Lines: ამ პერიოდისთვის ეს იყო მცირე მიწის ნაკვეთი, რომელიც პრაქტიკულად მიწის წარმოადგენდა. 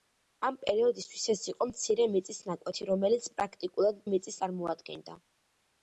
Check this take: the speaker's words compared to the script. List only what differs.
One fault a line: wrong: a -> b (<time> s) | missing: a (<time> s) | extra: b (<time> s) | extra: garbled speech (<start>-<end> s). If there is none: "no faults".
no faults